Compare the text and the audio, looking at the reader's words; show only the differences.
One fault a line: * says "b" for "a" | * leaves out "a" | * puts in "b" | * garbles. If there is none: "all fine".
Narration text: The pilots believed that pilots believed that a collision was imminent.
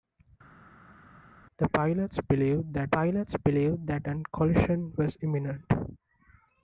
all fine